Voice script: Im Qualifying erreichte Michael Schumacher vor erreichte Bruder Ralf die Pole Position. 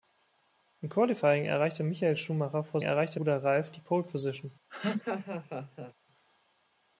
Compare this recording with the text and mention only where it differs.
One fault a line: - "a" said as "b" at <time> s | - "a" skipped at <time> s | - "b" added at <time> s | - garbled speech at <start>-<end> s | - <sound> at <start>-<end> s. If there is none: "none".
- laugh at 4.7-5.9 s